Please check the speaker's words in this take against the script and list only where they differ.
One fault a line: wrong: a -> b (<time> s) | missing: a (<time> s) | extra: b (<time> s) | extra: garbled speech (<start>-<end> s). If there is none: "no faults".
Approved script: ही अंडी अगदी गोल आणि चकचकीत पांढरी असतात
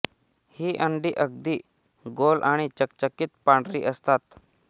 no faults